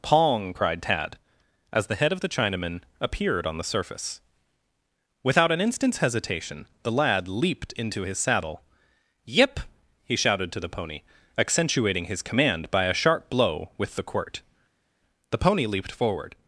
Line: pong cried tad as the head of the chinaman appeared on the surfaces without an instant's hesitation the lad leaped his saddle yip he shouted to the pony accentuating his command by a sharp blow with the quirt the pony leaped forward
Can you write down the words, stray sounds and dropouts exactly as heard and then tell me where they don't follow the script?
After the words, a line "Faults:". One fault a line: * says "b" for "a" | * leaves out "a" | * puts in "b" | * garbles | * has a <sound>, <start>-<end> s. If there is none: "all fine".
pong cried tad as the head of the chinaman appeared on the surface without an instant's hesitation the lad leaped into his saddle yip he shouted to the pony accentuating his command by a sharp blow with the quirt the pony leaped forward
Faults:
* says "surface" for "surfaces"
* puts in "into"